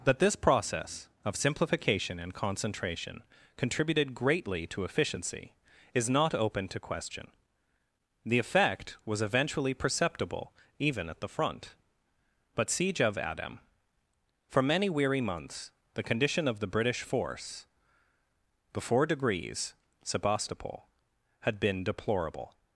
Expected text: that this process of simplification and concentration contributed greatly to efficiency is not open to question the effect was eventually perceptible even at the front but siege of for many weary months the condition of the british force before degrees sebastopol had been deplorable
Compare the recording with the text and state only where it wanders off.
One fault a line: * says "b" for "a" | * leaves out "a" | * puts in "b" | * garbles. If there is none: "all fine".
* puts in "adam"